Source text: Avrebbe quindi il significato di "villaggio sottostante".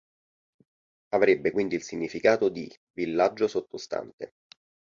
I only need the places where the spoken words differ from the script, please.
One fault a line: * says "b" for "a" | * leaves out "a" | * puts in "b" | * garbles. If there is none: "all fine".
all fine